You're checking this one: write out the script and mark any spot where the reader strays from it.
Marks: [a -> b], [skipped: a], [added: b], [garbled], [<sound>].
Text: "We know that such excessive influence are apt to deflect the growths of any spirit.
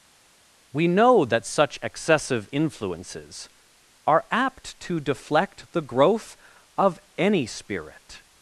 "We know that such excessive [influence -> influences] are apt to deflect the [growths -> growth] of any spirit.